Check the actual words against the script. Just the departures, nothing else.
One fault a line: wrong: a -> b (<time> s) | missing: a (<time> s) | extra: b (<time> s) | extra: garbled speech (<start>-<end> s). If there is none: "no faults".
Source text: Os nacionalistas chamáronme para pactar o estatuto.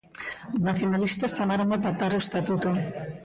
missing: para (1.8 s)